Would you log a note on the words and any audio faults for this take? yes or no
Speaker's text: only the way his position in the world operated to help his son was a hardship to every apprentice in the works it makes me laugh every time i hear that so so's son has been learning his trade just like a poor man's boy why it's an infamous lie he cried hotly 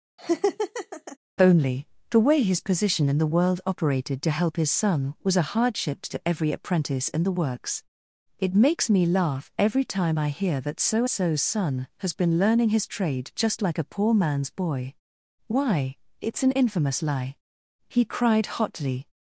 yes